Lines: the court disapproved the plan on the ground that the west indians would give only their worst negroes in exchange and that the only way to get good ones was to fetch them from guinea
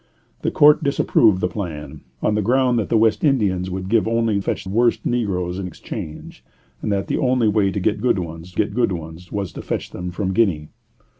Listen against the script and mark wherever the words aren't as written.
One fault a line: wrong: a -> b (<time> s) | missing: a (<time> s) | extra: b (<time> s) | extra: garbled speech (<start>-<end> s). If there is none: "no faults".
wrong: their -> fetch (4.4 s)
extra: get good ones (8.5 s)